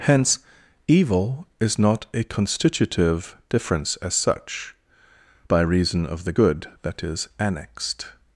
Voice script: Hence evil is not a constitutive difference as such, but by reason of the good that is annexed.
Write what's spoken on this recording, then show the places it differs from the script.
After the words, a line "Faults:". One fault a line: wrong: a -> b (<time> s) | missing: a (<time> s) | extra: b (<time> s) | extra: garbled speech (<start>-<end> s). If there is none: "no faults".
Hence evil is not a constitutive difference as such, by reason of the good that is annexed.
Faults:
missing: but (4.8 s)